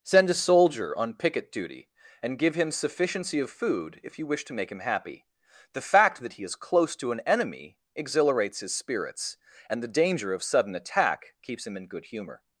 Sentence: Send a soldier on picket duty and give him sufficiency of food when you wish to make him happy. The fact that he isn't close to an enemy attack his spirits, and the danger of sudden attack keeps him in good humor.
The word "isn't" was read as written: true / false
false